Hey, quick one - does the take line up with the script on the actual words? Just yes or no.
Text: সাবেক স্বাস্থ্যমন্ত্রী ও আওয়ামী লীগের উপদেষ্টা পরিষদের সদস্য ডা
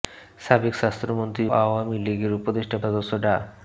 no